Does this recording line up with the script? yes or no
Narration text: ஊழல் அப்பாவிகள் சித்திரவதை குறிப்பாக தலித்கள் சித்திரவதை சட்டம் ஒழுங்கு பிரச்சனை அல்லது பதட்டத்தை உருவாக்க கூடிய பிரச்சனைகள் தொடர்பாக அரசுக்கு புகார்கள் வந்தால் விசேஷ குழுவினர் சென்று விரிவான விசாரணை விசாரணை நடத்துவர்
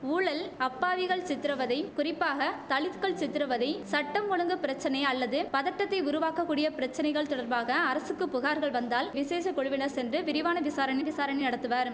yes